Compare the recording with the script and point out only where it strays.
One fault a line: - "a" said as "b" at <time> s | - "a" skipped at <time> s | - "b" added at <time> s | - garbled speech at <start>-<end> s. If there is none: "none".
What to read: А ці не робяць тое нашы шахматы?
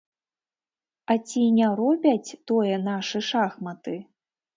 none